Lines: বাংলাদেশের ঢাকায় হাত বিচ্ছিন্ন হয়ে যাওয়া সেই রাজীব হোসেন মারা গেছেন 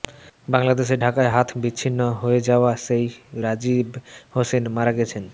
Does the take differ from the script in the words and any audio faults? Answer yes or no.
no